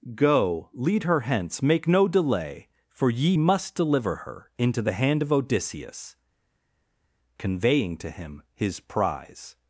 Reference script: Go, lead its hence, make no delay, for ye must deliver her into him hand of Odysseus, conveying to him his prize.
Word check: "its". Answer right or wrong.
wrong